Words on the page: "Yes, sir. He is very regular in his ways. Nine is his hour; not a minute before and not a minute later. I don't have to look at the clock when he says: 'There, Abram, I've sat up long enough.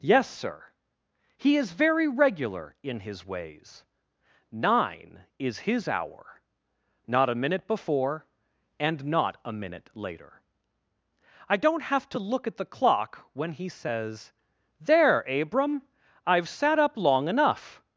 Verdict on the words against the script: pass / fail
pass